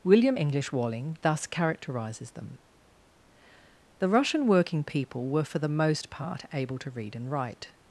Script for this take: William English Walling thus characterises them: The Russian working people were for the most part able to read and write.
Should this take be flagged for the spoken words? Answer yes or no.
no